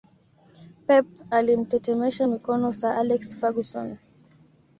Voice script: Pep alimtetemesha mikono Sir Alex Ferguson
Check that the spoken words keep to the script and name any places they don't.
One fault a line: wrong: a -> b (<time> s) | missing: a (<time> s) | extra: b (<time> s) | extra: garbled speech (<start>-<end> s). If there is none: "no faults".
no faults